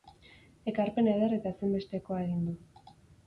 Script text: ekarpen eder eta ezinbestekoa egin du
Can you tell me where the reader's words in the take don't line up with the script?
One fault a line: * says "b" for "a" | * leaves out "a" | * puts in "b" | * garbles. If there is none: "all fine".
all fine